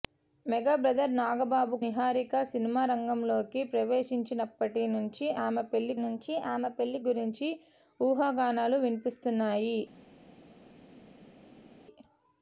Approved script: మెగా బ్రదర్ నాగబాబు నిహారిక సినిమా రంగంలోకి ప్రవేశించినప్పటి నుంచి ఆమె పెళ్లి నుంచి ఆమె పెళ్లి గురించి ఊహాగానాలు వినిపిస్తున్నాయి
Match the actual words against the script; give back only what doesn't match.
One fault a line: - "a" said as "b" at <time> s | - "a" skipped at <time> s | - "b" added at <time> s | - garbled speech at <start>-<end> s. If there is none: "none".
none